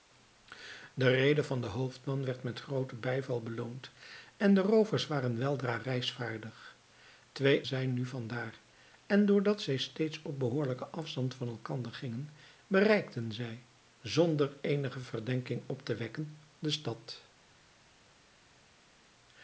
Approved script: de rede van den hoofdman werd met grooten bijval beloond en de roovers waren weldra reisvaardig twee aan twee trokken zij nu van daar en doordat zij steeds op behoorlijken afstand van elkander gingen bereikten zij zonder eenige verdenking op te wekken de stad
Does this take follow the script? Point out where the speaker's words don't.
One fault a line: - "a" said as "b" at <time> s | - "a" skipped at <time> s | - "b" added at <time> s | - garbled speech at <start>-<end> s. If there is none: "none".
- "aan twee trokken" skipped at 7.7 s